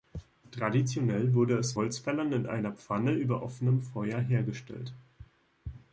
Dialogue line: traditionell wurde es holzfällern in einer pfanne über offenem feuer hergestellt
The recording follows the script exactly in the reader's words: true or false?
true